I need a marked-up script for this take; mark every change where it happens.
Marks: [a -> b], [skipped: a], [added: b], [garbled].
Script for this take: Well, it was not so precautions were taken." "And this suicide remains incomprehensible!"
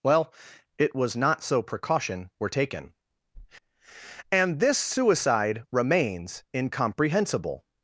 Well, it was not so [precautions -> precaution] were taken." "And this suicide remains incomprehensible!"